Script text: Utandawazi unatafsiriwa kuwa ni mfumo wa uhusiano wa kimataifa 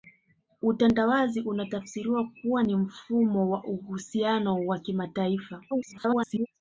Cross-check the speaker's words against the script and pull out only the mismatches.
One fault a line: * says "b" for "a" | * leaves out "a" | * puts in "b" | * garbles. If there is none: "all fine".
* garbles